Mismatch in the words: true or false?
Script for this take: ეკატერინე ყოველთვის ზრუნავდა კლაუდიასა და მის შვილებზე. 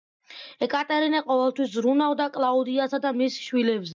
false